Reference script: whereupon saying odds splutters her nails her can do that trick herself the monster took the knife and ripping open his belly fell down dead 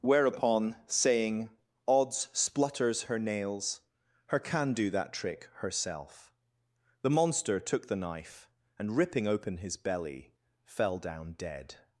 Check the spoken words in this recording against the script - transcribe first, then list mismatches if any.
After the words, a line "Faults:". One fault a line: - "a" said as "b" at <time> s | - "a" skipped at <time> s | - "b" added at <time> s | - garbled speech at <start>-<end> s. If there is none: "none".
whereupon saying odds splutters her nails her can do that trick herself the monster took the knife and ripping open his belly fell down dead
Faults:
none